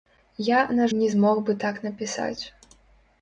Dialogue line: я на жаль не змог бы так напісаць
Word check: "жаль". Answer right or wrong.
wrong